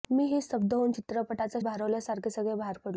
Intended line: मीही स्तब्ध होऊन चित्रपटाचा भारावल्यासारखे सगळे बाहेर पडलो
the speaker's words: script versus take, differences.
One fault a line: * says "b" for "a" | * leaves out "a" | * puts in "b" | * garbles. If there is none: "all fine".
all fine